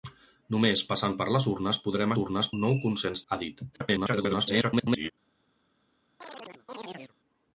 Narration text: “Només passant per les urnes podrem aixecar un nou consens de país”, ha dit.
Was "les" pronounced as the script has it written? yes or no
yes